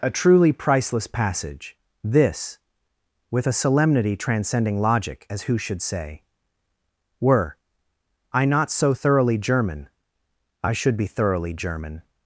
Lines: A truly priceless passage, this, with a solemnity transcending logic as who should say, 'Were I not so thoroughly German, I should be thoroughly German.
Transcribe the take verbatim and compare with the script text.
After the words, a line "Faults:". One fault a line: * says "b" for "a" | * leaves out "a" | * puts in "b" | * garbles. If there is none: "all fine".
A truly priceless passage, this, with a solemnity transcending logic as who should say, 'Were I not so thoroughly German, I should be thoroughly German.
Faults:
all fine